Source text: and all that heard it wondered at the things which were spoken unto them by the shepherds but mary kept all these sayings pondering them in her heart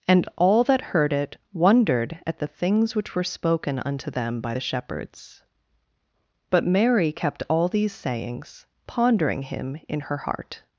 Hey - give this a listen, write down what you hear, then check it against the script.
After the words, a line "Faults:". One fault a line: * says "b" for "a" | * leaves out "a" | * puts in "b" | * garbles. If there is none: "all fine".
and all that heard it wondered at the things which were spoken unto them by the shepherds but mary kept all these sayings pondering him in her heart
Faults:
* says "him" for "them"